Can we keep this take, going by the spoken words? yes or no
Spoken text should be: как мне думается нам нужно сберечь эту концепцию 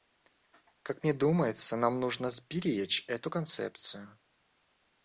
yes